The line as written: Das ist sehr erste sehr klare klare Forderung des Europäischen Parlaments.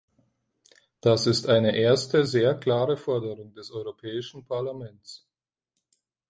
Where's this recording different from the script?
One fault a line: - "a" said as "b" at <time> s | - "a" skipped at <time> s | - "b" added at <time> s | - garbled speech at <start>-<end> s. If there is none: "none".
- "sehr" said as "eine" at 1.5 s
- "klare" skipped at 3.0 s